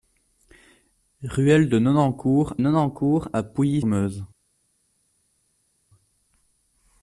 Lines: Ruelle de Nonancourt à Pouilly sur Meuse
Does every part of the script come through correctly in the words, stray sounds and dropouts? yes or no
no